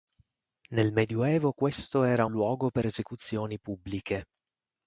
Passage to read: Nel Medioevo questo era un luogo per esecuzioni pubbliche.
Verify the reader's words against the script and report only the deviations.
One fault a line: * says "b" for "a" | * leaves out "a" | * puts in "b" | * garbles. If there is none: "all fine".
* leaves out "un"